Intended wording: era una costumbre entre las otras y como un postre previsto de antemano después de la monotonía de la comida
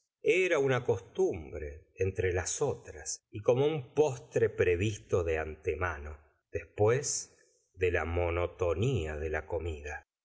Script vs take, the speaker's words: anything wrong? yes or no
no